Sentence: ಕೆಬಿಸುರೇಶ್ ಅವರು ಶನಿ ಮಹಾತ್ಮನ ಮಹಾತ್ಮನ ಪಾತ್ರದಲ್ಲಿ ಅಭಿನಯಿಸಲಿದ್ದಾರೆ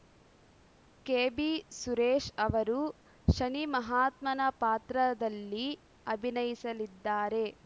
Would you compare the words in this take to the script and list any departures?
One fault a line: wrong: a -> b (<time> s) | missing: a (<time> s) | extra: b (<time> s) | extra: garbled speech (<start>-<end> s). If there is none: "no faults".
missing: ಮಹಾತ್ಮನ (4.4 s)